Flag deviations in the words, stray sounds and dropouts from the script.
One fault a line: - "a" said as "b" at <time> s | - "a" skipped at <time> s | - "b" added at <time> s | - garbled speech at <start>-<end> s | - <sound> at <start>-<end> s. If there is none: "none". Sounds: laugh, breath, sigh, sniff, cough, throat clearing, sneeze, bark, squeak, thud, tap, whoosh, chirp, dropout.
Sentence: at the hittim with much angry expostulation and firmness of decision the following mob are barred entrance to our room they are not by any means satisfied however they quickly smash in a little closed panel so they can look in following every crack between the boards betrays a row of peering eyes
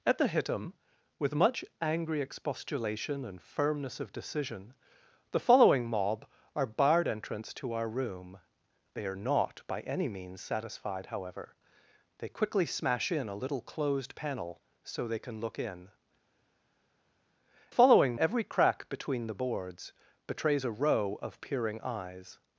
none